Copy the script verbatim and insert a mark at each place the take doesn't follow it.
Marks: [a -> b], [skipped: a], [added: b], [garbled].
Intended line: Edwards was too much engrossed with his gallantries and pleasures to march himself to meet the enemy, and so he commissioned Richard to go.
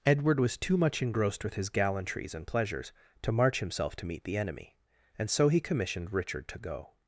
[Edwards -> Edward] was too much engrossed with his gallantries and pleasures to march himself to meet the enemy, and so he commissioned Richard to go.